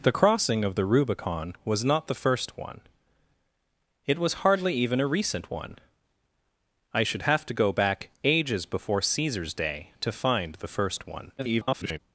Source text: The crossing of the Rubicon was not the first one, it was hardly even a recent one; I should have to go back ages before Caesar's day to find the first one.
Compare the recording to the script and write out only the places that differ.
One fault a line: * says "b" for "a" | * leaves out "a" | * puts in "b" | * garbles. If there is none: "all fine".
* garbles